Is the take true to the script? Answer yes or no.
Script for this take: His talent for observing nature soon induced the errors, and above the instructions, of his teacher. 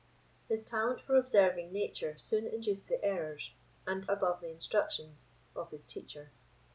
yes